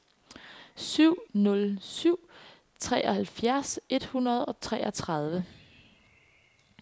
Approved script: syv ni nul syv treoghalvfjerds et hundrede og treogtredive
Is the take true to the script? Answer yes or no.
no